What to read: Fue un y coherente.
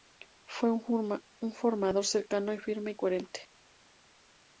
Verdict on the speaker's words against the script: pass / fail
fail